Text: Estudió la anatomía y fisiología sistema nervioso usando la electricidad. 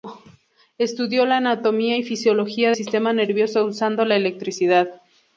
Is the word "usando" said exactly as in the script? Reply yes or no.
yes